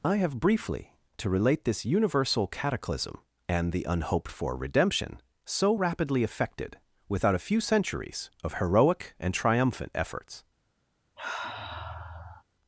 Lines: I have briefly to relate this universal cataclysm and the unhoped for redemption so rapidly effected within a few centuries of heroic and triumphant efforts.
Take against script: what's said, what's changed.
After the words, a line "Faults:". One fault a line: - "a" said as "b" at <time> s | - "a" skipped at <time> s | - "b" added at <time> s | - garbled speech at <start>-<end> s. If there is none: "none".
I have briefly to relate this universal cataclysm and the unhoped for redemption so rapidly effected without a few centuries of heroic and triumphant efforts.
Faults:
- "within" said as "without" at 7.1 s